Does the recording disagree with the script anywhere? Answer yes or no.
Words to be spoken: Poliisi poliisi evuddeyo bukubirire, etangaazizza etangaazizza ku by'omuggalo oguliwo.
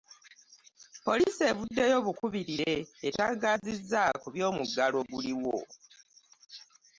yes